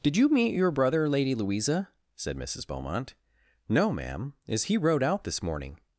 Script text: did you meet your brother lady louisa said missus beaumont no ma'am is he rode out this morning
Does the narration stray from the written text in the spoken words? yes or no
no